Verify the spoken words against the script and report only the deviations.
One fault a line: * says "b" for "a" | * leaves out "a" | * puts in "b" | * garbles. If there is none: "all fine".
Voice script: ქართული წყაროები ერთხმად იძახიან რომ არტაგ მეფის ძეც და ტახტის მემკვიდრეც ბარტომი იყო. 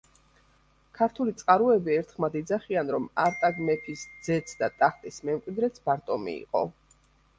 all fine